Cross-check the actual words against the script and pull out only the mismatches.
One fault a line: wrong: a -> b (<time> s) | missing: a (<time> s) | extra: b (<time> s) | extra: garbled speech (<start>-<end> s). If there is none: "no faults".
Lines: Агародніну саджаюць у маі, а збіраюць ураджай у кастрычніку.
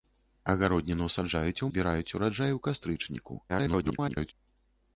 missing: маі а (1.7 s)
extra: garbled speech (3.5-4.3 s)